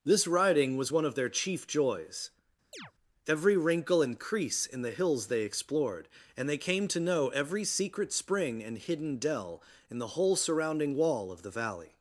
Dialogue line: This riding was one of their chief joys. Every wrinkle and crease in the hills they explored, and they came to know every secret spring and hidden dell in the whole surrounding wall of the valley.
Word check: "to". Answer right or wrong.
right